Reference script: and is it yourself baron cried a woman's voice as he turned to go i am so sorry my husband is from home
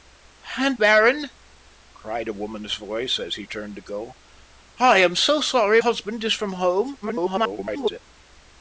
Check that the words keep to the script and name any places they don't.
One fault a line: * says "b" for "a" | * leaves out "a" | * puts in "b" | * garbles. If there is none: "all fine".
* leaves out "is it yourself"
* leaves out "my"
* garbles